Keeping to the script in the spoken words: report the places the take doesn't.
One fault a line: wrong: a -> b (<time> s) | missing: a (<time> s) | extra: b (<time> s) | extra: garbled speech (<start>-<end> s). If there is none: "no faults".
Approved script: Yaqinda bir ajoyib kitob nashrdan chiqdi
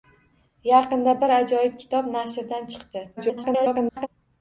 extra: garbled speech (3.2-4.1 s)